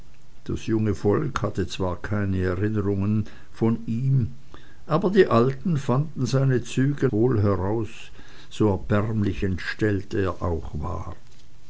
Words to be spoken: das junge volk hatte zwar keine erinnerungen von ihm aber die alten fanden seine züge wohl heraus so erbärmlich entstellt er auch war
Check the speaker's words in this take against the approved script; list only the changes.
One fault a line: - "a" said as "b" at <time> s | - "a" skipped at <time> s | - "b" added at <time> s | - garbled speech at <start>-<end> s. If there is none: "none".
none